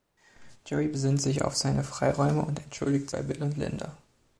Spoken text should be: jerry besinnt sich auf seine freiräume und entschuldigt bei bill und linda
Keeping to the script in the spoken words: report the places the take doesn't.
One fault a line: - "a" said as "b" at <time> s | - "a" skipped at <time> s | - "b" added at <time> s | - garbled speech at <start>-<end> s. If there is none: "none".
none